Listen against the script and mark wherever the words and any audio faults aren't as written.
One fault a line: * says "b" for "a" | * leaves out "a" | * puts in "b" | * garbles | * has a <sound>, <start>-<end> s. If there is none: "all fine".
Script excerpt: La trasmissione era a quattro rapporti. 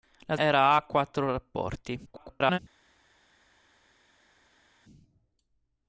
* leaves out "trasmissione"
* garbles